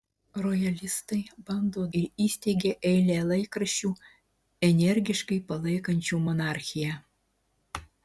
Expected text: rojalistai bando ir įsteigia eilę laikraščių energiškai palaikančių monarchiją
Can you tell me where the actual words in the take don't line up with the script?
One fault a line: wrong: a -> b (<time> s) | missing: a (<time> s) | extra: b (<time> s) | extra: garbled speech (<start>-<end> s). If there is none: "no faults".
no faults